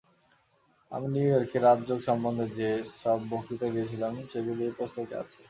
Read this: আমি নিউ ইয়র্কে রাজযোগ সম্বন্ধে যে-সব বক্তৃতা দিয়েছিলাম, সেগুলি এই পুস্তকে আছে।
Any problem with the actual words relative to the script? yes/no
no